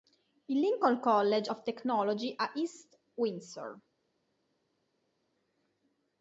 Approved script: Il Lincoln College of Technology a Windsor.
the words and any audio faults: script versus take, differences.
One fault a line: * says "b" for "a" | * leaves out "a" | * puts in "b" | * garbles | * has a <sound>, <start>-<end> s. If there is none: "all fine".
* puts in "East"